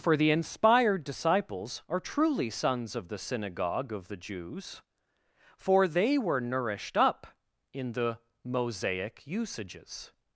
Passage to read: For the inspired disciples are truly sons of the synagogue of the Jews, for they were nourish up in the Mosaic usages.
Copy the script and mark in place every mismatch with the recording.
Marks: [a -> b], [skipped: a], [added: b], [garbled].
For the inspired disciples are truly sons of the synagogue of the Jews, for they were [nourish -> nourished] up in the Mosaic usages.